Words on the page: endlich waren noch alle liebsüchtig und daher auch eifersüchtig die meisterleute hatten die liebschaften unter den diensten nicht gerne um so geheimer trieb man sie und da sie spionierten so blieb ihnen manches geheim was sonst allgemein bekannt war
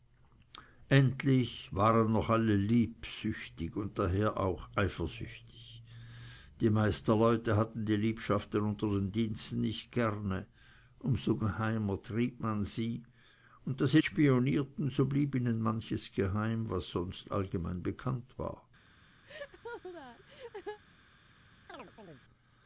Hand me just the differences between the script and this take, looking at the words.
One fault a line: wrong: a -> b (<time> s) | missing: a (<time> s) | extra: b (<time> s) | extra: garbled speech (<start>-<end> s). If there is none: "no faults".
no faults